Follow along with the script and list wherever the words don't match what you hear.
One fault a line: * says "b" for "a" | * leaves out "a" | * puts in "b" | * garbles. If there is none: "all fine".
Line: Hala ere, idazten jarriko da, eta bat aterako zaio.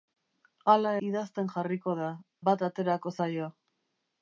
* leaves out "ere"
* leaves out "eta"